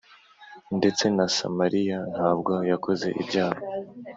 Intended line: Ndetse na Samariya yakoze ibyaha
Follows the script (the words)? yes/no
no